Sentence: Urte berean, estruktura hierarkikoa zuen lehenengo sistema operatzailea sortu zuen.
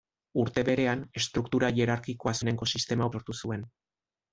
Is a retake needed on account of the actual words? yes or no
yes